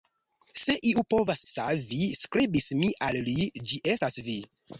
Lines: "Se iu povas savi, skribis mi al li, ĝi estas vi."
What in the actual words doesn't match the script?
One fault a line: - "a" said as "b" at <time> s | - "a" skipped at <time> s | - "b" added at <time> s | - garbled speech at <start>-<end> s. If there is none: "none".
none